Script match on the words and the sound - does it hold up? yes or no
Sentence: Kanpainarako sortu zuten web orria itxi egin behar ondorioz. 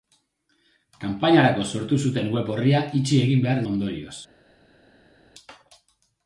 yes